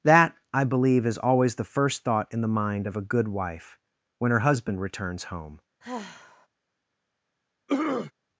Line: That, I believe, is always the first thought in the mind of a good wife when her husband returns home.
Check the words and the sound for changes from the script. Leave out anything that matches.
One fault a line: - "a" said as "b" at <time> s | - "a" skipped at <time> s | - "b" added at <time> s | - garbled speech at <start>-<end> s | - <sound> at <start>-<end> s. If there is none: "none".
- sigh at 5.8-6.5 s
- throat clearing at 7.7-8.1 s